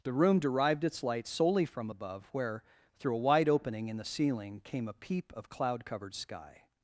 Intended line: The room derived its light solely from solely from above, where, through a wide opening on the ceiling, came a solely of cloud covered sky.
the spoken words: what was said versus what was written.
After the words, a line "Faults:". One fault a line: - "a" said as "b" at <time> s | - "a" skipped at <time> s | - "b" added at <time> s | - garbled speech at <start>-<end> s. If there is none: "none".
The room derived its light solely from above, where, through a wide opening in the ceiling, came a peep of cloud covered sky.
Faults:
- "solely from" skipped at 1.9 s
- "on" said as "in" at 3.9 s
- "solely" said as "peep" at 4.9 s